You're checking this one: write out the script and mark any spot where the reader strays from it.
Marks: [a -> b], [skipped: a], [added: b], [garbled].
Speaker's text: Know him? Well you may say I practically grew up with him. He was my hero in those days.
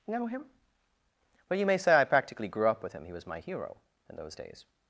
Know him? Well you may say I practically grew up with him. He was my hero in those days.